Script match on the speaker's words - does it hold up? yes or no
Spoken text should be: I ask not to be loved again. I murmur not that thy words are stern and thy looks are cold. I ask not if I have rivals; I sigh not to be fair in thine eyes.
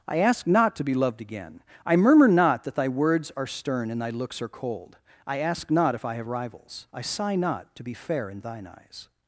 yes